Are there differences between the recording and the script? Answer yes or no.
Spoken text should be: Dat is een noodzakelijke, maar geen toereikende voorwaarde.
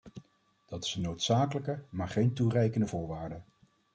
no